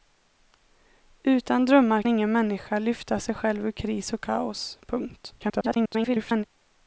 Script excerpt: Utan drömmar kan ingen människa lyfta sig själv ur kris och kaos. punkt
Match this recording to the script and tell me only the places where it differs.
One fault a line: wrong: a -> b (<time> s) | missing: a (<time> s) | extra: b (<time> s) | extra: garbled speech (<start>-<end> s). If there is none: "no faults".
missing: kan (2.0 s)
extra: garbled speech (5.4-6.4 s)